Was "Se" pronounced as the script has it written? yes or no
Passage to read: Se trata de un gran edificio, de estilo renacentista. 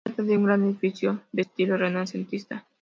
yes